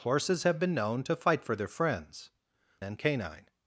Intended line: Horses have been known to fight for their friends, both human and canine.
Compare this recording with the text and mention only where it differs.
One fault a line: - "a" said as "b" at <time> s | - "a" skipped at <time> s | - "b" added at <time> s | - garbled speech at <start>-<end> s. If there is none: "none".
- "both human" skipped at 2.3 s